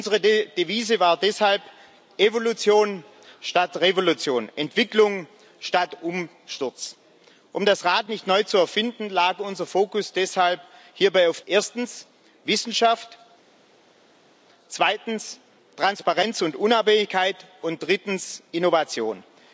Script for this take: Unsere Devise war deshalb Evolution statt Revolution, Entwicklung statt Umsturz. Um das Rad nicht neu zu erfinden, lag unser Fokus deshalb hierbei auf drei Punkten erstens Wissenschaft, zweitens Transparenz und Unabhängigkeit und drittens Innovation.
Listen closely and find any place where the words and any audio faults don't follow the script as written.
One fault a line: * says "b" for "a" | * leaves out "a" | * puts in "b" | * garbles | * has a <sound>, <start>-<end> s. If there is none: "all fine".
* leaves out "drei Punkten"